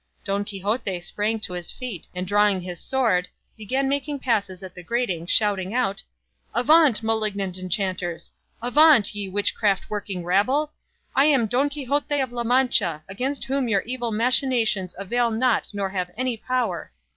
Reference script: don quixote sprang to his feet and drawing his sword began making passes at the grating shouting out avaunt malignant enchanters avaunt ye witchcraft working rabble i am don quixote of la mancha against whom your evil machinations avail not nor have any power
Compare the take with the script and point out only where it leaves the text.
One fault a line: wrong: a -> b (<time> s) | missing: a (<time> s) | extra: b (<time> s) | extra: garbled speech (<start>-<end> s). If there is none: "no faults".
no faults